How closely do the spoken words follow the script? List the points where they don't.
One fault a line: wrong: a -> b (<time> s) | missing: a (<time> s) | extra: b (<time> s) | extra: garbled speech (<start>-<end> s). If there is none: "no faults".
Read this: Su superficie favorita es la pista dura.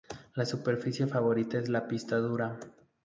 no faults